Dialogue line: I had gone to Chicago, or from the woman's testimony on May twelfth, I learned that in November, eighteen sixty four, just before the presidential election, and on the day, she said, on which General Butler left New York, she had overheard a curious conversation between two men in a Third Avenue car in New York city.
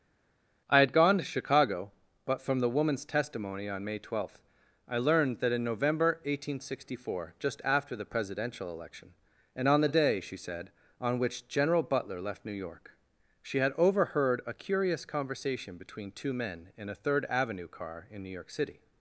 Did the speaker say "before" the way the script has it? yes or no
no